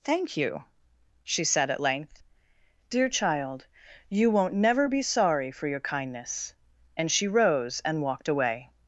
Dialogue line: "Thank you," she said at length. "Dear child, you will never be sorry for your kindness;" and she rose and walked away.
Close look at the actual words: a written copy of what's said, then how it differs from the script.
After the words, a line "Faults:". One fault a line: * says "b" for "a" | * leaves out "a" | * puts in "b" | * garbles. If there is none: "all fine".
"Thank you," she said at length. "Dear child, you won't never be sorry for your kindness;" and she rose and walked away.
Faults:
* says "won't" for "will"